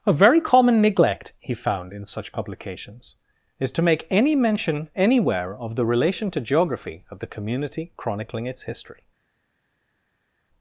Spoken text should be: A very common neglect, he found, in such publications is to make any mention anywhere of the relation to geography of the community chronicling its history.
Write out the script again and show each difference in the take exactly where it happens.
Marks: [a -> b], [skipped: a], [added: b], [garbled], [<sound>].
A very common neglect, he found, in such publications is to make any mention anywhere of the relation to geography of the community chronicling its history.